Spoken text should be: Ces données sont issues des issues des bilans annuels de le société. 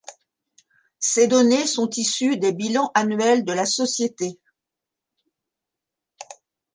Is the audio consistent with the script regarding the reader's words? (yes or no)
no